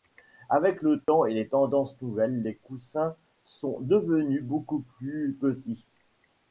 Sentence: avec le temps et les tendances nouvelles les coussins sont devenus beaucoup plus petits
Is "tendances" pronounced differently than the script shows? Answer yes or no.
no